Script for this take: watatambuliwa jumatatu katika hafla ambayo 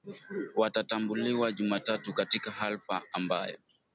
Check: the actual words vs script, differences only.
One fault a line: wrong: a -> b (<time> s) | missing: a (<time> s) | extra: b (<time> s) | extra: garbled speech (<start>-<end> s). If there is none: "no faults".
no faults